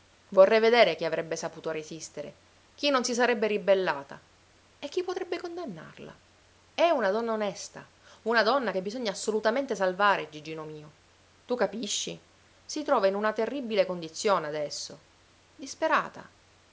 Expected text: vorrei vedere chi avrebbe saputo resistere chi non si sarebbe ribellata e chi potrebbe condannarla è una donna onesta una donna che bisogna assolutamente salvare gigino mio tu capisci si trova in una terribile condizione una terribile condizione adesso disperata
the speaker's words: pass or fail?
fail